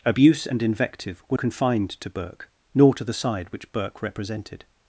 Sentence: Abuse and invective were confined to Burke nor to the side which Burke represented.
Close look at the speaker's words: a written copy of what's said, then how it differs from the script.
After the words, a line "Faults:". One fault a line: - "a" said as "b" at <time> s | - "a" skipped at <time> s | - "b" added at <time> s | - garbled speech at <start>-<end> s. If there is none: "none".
Abuse and invective were confined to Burke nor to the side which Burke represented.
Faults:
none